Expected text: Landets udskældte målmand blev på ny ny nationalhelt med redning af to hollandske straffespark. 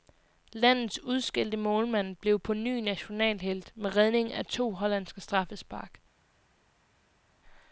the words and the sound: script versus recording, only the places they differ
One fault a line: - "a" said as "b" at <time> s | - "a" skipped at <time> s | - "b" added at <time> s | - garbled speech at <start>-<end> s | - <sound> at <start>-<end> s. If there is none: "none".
- "ny" skipped at 2.8 s